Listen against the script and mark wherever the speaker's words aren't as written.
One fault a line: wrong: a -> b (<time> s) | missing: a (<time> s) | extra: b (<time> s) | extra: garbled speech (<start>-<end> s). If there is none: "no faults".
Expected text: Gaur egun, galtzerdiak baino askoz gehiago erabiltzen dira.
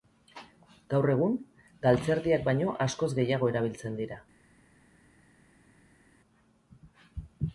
no faults